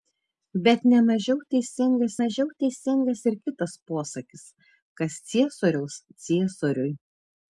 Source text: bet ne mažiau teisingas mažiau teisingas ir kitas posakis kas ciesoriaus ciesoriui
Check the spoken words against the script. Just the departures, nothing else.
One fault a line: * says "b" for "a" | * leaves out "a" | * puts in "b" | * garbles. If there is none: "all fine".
all fine